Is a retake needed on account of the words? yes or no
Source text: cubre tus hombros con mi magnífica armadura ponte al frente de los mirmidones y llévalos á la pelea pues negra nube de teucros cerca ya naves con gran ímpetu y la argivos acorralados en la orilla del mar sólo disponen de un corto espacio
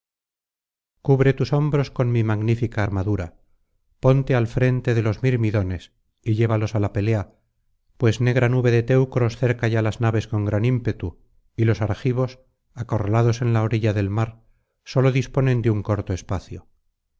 yes